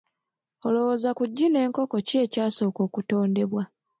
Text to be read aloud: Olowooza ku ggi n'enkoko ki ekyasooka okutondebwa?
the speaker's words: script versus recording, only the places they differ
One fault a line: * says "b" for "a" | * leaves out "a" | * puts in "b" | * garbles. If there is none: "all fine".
all fine